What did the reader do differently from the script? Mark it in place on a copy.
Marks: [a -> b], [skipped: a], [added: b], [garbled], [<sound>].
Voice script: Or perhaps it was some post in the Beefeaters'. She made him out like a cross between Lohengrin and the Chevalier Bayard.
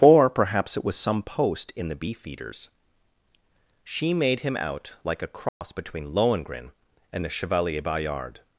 Or perhaps it was some post in the Beefeaters'. She made him out like a cross [dropout] between Lohengrin and the Chevalier Bayard.